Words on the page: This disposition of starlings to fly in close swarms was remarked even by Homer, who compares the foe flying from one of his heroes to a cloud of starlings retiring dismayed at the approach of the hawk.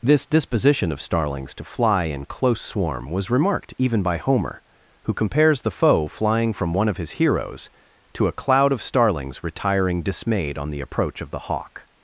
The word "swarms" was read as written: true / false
false